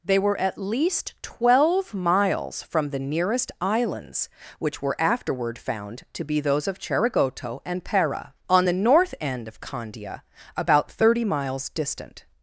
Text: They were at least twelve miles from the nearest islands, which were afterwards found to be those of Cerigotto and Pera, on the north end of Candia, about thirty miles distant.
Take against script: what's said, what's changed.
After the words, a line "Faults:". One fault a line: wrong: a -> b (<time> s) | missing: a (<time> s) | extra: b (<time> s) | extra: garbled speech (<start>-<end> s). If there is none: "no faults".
They were at least twelve miles from the nearest islands, which were afterward found to be those of Cerigotto and Pera, on the north end of Candia, about thirty miles distant.
Faults:
wrong: afterwards -> afterward (5.0 s)